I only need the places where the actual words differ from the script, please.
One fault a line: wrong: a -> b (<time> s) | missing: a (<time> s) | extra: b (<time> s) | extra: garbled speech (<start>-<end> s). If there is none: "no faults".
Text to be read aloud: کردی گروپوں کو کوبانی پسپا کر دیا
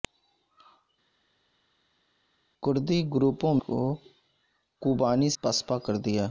no faults